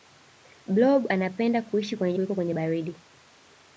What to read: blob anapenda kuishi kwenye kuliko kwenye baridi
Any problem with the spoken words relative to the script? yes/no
no